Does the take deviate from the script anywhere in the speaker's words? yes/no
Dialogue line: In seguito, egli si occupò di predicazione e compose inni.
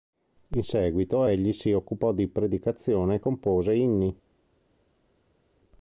no